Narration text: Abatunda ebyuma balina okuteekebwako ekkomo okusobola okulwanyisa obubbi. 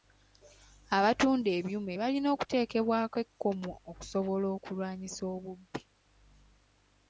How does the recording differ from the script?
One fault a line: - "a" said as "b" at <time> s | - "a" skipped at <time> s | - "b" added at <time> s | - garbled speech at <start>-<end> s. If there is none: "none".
none